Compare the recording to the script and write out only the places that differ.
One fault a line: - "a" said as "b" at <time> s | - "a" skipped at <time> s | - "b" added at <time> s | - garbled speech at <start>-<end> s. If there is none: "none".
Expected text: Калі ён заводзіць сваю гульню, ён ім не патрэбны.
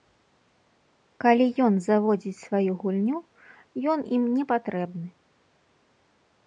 none